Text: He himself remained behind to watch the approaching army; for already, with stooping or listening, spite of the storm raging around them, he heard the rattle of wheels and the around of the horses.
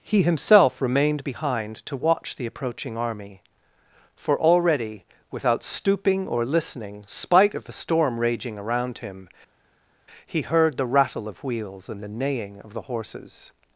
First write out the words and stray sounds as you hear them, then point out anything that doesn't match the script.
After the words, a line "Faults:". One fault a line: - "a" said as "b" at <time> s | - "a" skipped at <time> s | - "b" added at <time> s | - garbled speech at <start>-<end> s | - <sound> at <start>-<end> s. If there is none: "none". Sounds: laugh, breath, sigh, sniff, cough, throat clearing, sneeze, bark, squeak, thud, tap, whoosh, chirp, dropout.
He himself remained behind to watch the approaching army; for already, without stooping or listening, spite of the storm raging around him, he heard the rattle of wheels and the neighing of the horses.
Faults:
- "with" said as "without" at 5.3 s
- "them" said as "him" at 9.0 s
- "around" said as "neighing" at 12.1 s